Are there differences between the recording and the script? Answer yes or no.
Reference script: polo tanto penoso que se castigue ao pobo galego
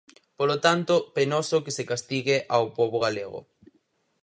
no